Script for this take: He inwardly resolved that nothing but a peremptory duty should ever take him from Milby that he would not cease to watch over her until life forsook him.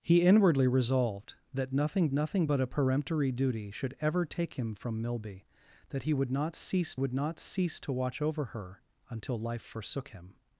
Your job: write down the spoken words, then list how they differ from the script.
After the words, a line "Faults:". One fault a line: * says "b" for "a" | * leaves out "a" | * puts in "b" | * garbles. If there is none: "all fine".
He inwardly resolved that nothing nothing but a peremptory duty should ever take him from Milby that he would not cease would not cease to watch over her until life forsook him.
Faults:
* puts in "nothing"
* puts in "would not cease"